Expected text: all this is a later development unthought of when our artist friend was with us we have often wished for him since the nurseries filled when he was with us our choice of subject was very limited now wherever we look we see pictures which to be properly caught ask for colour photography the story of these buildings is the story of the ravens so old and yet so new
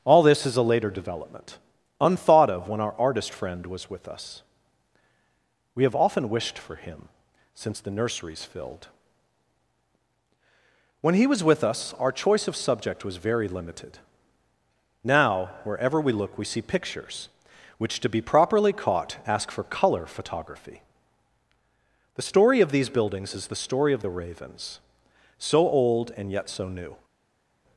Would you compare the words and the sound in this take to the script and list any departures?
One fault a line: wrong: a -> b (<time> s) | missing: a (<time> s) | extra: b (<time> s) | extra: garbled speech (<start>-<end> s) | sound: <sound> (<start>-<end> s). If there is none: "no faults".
no faults